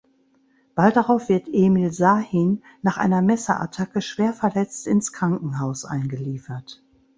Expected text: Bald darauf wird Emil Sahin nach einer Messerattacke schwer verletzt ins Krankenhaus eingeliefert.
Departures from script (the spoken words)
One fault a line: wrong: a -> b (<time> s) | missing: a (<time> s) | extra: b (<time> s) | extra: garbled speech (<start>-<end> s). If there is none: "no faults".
no faults